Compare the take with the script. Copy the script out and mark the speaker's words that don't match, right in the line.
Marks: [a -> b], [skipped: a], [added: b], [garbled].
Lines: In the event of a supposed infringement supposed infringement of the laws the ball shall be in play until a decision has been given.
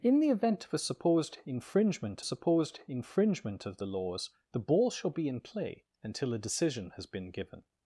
In the event of a supposed infringement supposed infringement of the laws the ball shall be in play until a decision has been given.